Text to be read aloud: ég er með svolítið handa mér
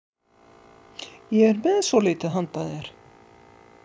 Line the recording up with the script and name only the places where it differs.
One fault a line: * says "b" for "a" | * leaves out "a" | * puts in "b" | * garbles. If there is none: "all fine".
* says "þér" for "mér"